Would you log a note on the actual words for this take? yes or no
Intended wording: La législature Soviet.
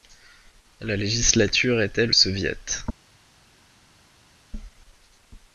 yes